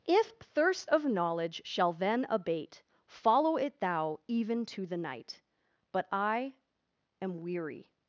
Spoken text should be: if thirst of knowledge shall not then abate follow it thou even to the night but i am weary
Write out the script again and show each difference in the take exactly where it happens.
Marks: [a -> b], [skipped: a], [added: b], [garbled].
if thirst of knowledge shall [skipped: not] then abate follow it thou even to the night but i am weary